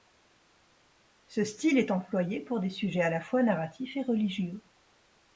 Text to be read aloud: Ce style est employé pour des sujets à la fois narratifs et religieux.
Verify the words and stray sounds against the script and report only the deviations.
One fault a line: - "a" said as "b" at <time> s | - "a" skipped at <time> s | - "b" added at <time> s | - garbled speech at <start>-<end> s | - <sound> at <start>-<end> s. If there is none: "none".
none